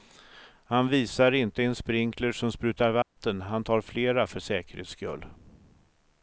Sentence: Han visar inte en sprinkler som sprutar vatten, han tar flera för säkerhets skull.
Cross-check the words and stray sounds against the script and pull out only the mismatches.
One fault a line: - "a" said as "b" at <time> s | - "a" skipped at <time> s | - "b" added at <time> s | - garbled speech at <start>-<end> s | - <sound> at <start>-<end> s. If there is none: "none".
- dropout at 3.0-3.2 s